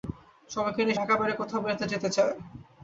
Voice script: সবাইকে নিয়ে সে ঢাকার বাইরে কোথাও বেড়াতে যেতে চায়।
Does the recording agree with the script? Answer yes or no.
no